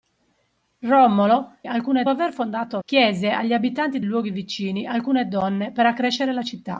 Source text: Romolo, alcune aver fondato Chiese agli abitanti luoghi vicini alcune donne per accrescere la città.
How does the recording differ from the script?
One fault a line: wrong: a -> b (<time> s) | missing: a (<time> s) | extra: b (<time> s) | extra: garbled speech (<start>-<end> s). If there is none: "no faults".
no faults